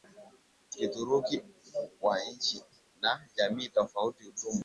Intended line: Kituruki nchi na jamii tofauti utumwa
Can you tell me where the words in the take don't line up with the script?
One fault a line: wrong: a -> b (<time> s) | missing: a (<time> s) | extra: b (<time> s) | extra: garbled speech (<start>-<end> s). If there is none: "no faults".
extra: wa (2.0 s)